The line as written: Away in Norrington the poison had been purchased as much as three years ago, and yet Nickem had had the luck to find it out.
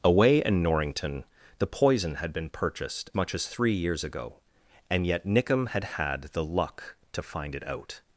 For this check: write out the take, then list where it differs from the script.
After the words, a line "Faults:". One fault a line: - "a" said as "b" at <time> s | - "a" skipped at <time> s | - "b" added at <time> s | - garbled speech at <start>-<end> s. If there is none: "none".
Away in Norrington the poison had been purchased much as three years ago, and yet Nickem had had the luck to find it out.
Faults:
- "as" skipped at 3.1 s